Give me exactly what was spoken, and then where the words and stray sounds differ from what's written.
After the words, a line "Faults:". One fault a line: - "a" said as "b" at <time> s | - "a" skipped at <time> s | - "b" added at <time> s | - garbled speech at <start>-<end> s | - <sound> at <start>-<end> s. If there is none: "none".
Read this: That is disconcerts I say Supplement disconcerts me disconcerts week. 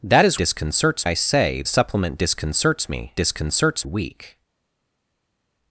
That is disconcerts I say Supplement disconcerts me disconcerts week.
Faults:
none